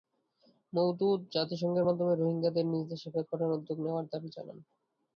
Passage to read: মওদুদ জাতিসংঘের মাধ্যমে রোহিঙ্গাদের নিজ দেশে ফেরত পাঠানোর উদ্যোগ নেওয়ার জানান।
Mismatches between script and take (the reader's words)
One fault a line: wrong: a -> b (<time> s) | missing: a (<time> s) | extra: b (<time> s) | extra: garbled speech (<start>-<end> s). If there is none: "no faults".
extra: দাবি (4.1 s)